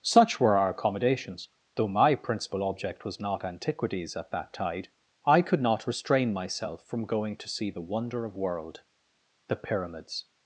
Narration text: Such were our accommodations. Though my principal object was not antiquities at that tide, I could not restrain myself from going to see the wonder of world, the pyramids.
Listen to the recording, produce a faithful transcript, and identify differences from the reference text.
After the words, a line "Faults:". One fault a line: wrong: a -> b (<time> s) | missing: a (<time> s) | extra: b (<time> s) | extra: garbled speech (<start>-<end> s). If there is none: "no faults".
Such were our accommodations. Though my principal object was not antiquities at that tide, I could not restrain myself from going to see the wonder of world, the pyramids.
Faults:
no faults